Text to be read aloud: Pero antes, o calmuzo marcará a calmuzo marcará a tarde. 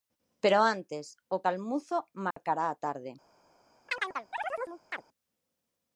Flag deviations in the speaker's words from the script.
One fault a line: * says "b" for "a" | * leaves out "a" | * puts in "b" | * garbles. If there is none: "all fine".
* leaves out "calmuzo marcará a"